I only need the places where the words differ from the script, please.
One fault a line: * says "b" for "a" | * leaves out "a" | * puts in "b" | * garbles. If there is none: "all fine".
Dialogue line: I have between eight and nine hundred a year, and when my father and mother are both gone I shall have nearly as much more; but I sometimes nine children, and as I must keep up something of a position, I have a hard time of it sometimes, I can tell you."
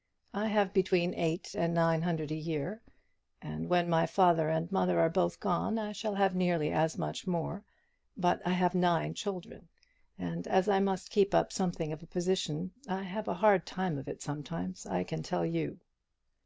* says "have" for "sometimes"